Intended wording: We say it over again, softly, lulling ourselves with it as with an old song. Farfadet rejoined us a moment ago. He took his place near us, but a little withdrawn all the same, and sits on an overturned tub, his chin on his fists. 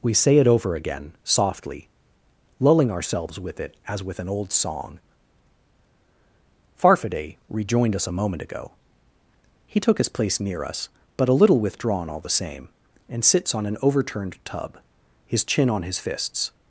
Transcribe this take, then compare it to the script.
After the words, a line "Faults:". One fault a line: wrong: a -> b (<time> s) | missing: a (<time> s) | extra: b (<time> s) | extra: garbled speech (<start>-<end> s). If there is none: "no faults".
We say it over again, softly, lulling ourselves with it as with an old song. Farfadet rejoined us a moment ago. He took his place near us, but a little withdrawn all the same, and sits on an overturned tub, his chin on his fists.
Faults:
no faults